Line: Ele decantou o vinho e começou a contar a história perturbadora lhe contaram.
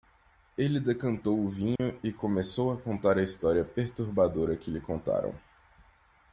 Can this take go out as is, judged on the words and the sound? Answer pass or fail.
fail